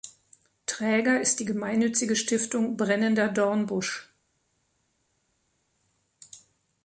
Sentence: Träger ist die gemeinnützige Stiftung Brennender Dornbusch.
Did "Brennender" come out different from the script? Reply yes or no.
no